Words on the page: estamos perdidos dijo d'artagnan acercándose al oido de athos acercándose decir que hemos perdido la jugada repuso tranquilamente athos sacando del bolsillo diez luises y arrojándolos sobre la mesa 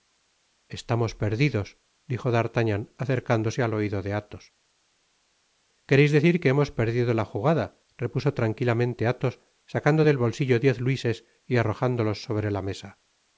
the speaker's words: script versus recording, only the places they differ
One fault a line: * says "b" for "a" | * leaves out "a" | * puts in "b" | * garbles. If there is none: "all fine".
* says "quereis" for "acercándose"